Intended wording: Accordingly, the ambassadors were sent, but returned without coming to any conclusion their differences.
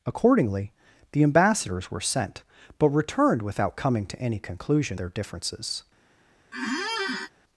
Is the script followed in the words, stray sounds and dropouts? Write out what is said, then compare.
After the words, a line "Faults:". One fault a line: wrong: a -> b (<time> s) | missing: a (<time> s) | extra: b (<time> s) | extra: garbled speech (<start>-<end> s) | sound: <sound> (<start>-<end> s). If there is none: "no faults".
Accordingly, the ambassadors were sent, but returned without coming to any conclusion their differences.
Faults:
sound: squeak (6.5-7.3 s)